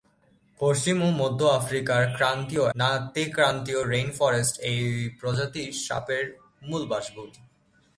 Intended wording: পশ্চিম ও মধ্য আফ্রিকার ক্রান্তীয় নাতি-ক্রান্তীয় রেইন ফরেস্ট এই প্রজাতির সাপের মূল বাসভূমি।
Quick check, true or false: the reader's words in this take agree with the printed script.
true